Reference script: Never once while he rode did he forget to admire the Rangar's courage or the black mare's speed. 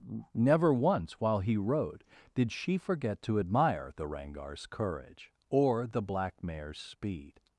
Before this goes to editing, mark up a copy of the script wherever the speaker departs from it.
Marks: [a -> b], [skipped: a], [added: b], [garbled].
Never once while he rode did [he -> she] forget to admire the Rangar's courage or the black mare's speed.